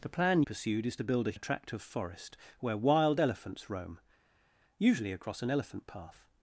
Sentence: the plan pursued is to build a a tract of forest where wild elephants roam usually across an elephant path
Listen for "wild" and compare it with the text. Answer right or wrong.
right